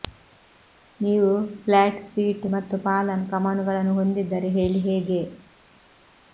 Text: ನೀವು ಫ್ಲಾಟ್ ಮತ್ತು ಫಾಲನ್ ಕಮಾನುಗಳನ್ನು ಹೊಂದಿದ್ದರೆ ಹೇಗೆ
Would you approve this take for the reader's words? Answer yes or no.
no